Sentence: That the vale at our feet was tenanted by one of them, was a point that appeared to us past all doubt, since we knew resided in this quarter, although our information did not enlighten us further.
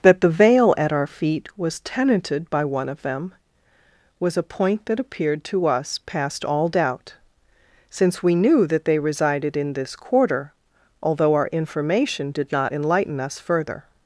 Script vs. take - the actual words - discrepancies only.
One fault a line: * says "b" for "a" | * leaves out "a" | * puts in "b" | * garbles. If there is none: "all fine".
* puts in "that they"